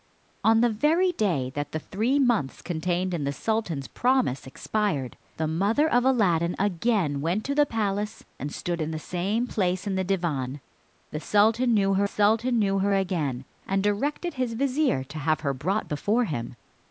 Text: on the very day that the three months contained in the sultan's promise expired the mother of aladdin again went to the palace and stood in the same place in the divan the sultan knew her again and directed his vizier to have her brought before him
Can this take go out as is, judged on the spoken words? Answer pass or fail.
fail